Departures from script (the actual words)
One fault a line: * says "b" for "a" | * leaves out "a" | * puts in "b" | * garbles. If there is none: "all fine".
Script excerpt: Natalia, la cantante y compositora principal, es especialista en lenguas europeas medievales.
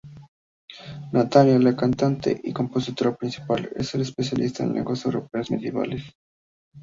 all fine